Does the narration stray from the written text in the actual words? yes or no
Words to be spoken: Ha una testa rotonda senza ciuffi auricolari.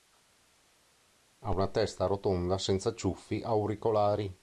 no